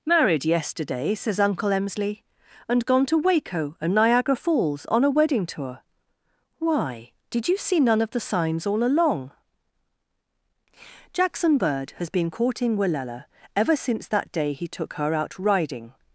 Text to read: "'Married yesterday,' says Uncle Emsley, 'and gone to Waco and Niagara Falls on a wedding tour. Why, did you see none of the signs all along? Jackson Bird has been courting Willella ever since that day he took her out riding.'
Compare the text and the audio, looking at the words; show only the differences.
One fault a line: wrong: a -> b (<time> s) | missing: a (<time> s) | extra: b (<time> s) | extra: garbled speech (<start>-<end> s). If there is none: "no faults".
no faults